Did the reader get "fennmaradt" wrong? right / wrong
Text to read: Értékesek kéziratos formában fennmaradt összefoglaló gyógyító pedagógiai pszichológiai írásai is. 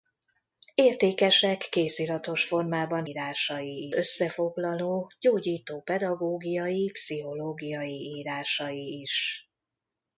wrong